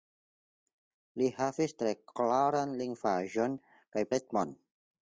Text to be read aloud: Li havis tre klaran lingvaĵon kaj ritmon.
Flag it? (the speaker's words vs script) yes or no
no